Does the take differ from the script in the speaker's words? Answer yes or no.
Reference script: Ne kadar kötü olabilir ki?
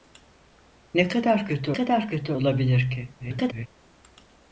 yes